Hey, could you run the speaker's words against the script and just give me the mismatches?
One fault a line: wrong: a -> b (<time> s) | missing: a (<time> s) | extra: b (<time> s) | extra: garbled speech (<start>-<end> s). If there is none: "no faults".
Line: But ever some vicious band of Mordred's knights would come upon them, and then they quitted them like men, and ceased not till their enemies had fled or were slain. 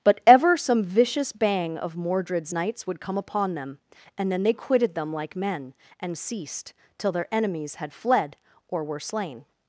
wrong: band -> bang (1.3 s)
missing: not (6.7 s)